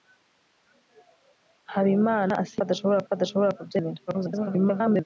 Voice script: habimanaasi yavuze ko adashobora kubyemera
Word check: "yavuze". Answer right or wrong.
wrong